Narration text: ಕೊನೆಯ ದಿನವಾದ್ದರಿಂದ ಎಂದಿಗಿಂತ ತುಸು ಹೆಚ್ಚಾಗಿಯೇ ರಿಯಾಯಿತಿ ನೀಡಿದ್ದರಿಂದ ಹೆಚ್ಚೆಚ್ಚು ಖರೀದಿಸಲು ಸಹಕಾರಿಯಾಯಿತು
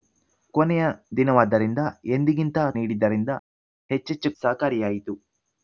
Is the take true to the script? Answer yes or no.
no